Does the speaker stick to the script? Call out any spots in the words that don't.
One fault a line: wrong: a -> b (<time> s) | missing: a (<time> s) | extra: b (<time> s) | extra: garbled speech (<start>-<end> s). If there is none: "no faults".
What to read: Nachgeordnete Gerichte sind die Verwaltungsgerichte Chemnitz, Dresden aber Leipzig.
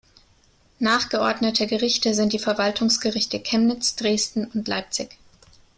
wrong: aber -> und (4.4 s)